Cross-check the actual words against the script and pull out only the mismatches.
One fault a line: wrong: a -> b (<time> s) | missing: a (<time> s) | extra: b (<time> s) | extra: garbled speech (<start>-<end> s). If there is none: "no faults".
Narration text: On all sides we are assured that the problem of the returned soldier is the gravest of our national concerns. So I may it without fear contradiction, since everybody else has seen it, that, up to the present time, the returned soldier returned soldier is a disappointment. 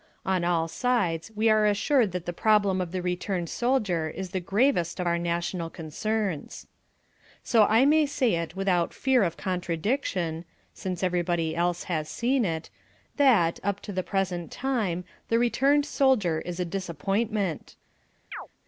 extra: say (8.1 s)
extra: of (9.2 s)
missing: returned soldier (16.4 s)